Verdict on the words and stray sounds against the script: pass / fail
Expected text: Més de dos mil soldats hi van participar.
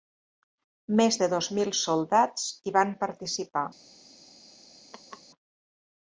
fail